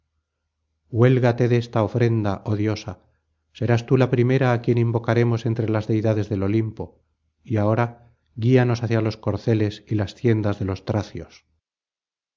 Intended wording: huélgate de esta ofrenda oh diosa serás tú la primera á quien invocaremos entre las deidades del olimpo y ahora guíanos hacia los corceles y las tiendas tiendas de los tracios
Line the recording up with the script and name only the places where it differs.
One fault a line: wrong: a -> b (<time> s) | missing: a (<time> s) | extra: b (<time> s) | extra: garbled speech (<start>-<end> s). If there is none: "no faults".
missing: tiendas (10.6 s)